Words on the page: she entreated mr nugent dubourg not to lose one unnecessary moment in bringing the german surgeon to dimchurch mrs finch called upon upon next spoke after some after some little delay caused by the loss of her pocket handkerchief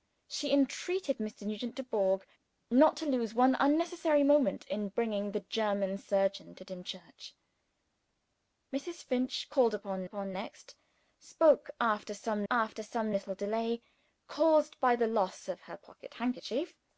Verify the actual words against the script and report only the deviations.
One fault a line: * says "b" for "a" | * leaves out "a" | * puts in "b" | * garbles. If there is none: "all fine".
all fine